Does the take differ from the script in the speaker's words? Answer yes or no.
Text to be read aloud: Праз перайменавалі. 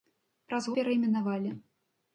no